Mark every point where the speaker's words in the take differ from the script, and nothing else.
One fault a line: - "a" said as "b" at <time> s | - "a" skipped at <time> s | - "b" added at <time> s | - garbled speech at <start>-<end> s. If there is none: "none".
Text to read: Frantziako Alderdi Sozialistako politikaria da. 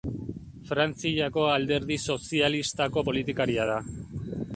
none